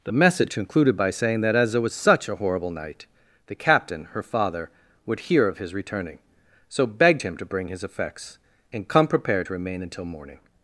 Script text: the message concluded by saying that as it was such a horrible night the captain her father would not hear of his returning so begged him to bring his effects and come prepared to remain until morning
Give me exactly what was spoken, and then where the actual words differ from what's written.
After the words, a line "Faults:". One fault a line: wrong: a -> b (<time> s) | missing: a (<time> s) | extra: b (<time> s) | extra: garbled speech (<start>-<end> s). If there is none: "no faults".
the message concluded by saying that as it was such a horrible night the captain her father would hear of his returning so begged him to bring his effects and come prepared to remain until morning
Faults:
missing: not (5.2 s)